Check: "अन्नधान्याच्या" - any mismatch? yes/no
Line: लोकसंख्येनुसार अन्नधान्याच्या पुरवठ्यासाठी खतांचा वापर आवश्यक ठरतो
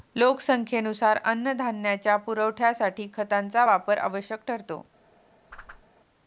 no